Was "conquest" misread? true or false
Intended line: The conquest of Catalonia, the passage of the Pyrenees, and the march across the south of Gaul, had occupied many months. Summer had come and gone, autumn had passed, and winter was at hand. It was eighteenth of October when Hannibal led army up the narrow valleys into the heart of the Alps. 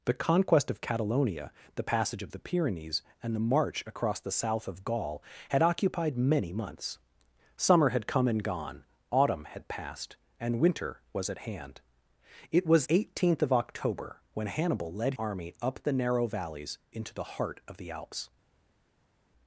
false